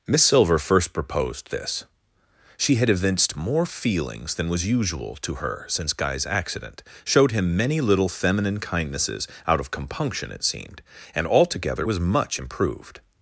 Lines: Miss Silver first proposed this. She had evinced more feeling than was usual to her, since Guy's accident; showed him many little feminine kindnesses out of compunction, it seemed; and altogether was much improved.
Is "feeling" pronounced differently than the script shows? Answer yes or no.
yes